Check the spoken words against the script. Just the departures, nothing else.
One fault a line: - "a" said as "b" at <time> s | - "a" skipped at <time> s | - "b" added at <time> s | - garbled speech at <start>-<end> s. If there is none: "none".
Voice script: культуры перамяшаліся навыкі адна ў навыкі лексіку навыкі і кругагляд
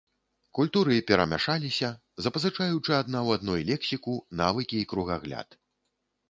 - "навыкі" said as "запазычаючы" at 2.3 s
- "навыкі" said as "адной" at 3.4 s